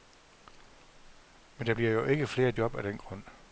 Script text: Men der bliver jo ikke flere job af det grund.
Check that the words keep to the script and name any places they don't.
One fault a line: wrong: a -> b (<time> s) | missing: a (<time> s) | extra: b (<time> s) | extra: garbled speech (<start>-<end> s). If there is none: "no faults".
wrong: det -> den (2.8 s)